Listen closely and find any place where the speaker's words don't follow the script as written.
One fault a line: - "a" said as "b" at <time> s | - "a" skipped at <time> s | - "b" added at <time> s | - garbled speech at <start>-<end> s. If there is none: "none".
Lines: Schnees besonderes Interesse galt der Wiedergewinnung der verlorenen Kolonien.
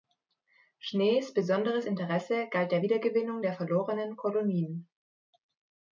none